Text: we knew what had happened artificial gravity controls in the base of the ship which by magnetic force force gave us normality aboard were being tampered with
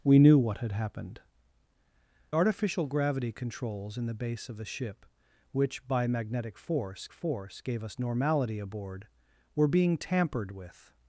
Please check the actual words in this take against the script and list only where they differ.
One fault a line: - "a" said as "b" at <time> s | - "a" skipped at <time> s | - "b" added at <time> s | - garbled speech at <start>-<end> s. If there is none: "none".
none